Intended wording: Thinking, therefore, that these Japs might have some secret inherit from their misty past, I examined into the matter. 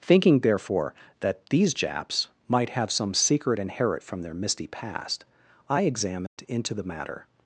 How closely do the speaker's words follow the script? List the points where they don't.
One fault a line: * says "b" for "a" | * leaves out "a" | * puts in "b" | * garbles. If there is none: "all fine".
all fine